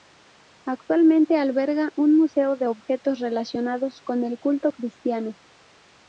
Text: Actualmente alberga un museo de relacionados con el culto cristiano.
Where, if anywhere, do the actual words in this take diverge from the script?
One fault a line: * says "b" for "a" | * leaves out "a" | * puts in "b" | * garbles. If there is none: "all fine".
* puts in "objetos"